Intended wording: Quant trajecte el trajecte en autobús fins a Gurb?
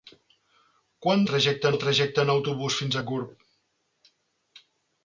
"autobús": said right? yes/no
yes